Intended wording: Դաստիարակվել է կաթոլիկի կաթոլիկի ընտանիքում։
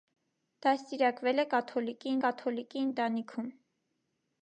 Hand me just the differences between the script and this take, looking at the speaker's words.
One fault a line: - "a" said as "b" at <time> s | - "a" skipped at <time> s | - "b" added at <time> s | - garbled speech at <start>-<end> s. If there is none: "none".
none